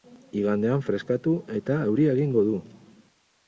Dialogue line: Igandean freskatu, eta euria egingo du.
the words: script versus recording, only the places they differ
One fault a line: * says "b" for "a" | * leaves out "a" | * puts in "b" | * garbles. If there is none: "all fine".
all fine